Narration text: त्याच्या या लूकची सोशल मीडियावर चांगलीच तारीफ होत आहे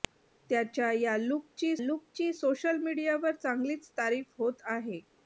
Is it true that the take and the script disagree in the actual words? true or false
true